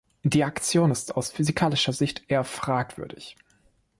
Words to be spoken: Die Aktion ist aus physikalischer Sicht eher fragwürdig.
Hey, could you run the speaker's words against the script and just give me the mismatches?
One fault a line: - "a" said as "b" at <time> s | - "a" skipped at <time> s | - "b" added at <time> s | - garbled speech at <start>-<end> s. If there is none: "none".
none